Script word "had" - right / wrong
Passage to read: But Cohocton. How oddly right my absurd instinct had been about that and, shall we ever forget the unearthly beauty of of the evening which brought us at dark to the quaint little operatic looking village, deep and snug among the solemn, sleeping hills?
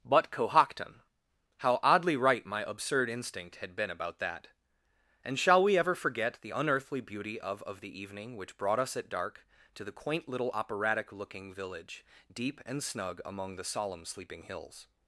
right